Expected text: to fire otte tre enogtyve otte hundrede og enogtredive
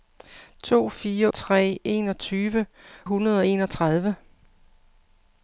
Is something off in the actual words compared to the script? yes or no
yes